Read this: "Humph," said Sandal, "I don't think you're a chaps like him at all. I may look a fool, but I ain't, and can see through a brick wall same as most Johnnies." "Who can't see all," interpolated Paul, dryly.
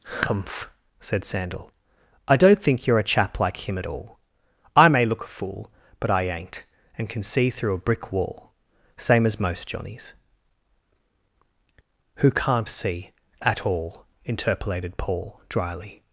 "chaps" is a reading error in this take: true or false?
true